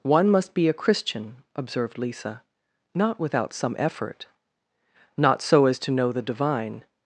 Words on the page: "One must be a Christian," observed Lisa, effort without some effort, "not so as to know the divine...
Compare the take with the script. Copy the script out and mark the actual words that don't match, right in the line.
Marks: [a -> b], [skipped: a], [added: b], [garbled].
"One must be a Christian," observed Lisa, [effort -> not] without some effort, "not so as to know the divine...